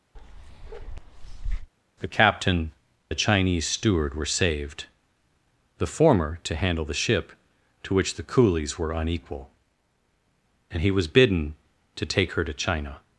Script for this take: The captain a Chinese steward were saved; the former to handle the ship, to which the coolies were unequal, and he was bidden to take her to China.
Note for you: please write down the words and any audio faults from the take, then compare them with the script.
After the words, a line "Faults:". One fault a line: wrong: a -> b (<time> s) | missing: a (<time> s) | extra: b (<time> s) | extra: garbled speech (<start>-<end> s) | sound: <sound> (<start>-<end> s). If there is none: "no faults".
The captain a Chinese steward were saved; the former to handle the ship, to which the coolies were unequal, and he was bidden to take her to China.
Faults:
sound: bark (0.2-1.7 s)